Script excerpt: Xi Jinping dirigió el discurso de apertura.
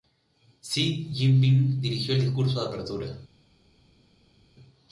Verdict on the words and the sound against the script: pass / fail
pass